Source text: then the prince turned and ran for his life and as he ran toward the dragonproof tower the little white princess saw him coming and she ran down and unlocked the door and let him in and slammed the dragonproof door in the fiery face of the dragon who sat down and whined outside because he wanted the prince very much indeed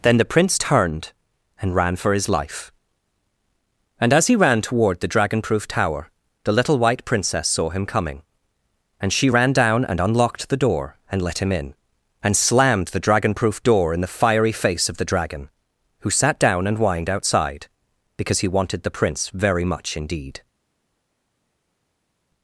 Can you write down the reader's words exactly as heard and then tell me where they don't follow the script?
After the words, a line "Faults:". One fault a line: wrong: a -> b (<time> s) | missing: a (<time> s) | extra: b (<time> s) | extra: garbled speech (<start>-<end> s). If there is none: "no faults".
then the prince turned and ran for his life and as he ran toward the dragonproof tower the little white princess saw him coming and she ran down and unlocked the door and let him in and slammed the dragonproof door in the fiery face of the dragon who sat down and whined outside because he wanted the prince very much indeed
Faults:
no faults